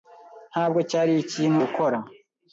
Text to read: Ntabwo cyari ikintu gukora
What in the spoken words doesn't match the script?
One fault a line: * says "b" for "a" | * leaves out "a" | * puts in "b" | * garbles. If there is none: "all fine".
all fine